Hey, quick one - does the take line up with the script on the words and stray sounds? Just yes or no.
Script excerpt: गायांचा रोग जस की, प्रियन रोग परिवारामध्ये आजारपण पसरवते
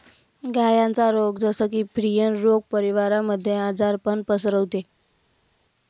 yes